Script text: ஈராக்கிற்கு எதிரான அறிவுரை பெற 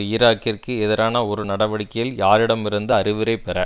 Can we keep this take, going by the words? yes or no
no